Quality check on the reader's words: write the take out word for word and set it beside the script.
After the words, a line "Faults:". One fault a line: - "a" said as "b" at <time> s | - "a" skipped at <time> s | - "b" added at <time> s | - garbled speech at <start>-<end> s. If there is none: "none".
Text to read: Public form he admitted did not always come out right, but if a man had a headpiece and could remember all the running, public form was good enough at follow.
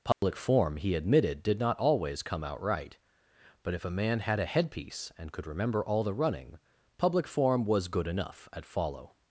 Public form he admitted did not always come out right, but if a man had a headpiece and could remember all the running, public form was good enough at follow.
Faults:
none